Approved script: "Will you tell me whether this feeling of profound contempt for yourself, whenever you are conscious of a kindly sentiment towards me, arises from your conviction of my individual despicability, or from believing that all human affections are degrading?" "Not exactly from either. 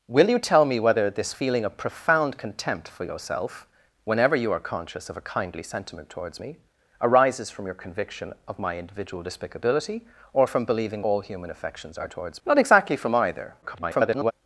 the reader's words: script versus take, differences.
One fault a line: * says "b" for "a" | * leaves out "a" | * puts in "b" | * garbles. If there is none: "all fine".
* leaves out "that"
* says "towards" for "degrading"
* garbles